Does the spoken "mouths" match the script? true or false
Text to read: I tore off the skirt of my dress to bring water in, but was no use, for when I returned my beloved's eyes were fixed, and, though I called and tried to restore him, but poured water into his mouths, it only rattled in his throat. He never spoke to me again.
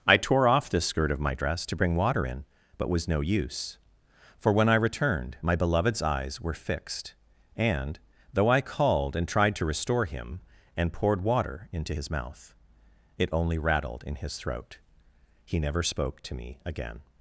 false